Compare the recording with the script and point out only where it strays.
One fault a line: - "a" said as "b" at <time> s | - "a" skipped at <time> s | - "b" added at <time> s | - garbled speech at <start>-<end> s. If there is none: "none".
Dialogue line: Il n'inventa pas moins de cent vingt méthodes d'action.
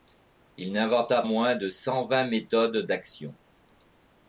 - "pas" skipped at 1.2 s